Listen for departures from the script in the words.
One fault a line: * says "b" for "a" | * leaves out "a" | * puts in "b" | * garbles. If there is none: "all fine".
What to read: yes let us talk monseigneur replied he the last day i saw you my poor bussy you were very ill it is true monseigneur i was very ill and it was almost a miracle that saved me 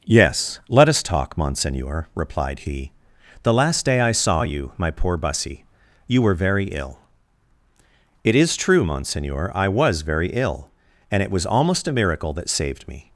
all fine